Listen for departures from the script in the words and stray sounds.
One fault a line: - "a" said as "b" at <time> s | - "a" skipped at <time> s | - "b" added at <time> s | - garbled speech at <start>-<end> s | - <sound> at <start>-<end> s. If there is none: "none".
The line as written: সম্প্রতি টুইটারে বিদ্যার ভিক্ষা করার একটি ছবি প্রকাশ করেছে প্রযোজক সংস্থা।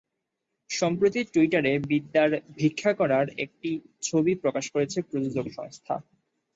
none